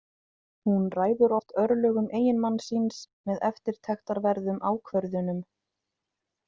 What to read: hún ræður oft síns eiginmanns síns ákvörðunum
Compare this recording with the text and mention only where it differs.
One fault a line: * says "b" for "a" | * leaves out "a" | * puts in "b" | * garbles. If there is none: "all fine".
* says "örlögum" for "síns"
* puts in "með eftirtektarverðum"